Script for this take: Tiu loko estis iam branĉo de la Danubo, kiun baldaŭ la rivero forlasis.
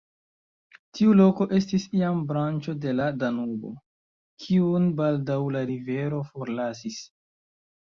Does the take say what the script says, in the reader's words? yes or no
yes